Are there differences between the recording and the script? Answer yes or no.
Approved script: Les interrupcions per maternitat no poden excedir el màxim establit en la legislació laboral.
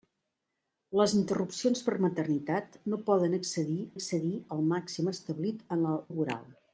yes